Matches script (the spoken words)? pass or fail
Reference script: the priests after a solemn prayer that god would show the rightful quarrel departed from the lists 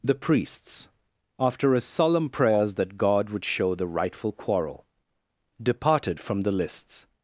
fail